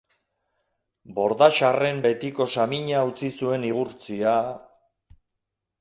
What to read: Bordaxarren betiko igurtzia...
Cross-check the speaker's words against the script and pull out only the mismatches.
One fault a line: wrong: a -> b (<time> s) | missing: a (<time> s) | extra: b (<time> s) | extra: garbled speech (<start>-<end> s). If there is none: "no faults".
extra: samina utzi zuen (2.5 s)